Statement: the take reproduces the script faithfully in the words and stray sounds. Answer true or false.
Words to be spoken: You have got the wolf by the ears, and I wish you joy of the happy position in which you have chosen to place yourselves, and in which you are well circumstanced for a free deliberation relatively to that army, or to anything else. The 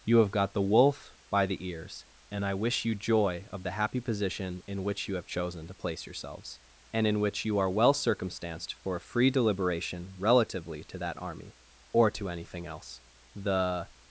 true